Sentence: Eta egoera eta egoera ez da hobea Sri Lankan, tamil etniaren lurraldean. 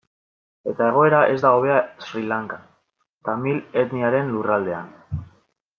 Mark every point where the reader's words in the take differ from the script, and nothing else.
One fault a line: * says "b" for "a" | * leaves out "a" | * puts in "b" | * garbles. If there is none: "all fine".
* leaves out "eta egoera"